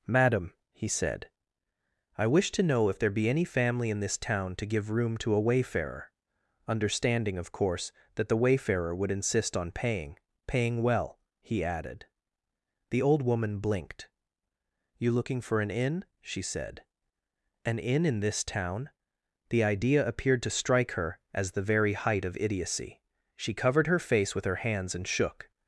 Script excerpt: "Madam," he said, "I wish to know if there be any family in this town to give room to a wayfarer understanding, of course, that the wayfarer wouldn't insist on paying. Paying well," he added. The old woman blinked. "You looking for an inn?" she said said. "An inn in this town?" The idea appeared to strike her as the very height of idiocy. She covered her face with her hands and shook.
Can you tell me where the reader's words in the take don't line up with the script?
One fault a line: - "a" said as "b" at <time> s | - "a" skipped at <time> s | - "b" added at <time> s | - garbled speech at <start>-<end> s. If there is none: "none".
- "wouldn't" said as "would" at 8.9 s
- "said" skipped at 16.8 s